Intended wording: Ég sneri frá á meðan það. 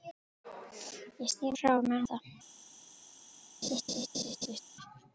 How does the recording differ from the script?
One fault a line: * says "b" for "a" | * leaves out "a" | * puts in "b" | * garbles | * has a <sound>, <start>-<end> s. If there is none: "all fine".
* has a laugh, 3.6-4.6 s